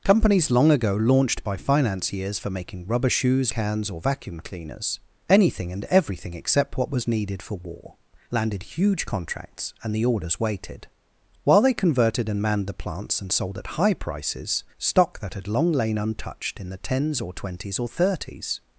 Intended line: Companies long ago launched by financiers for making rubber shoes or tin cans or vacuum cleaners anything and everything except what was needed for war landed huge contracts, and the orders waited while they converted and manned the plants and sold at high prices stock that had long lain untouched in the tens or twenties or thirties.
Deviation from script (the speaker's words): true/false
true